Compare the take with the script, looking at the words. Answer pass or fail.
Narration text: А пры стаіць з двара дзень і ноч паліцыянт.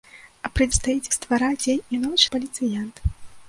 pass